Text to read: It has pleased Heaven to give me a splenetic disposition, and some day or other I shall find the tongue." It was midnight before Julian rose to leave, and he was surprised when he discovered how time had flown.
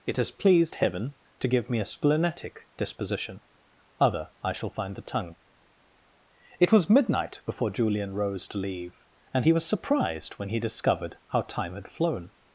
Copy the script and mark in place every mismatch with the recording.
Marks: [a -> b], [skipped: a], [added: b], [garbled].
It has pleased Heaven to give me a splenetic disposition, [skipped: and some day or] other I shall find the tongue." It was midnight before Julian rose to leave, and he was surprised when he discovered how time had flown.